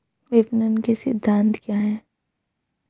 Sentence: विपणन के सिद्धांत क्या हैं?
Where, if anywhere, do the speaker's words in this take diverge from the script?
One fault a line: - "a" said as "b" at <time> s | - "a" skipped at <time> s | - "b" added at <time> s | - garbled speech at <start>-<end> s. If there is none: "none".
none